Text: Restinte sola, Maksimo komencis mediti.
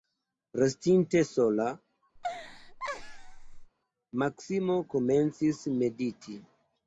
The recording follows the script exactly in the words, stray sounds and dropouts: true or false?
false